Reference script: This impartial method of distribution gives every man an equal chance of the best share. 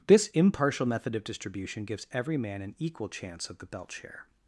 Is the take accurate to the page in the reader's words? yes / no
no